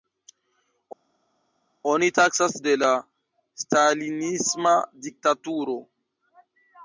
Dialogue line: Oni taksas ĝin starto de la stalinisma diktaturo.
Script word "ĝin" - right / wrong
wrong